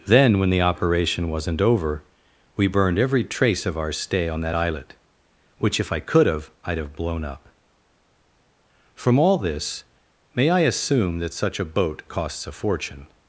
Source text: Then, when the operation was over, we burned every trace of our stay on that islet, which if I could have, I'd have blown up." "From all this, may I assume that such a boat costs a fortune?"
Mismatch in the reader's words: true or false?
true